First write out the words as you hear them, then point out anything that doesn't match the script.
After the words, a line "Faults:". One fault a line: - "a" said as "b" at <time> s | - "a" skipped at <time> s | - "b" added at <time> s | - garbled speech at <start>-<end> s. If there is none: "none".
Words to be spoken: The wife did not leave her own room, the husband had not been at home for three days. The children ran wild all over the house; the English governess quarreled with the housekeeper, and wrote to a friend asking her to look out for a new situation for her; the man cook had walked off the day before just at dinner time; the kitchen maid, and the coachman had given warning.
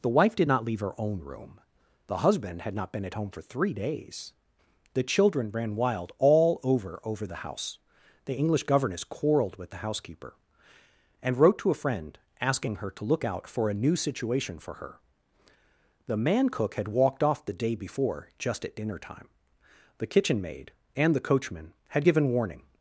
The wife did not leave her own room, the husband had not been at home for three days. The children ran wild all over over the house; the English governess quarreled with the housekeeper, and wrote to a friend asking her to look out for a new situation for her; the man cook had walked off the day before just at dinner time; the kitchen maid, and the coachman had given warning.
Faults:
- "over" added at 7.0 s